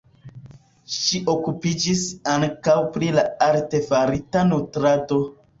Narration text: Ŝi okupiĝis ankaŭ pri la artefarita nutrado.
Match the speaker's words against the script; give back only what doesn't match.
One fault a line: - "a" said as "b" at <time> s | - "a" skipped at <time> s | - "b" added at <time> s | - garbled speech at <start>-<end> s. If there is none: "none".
none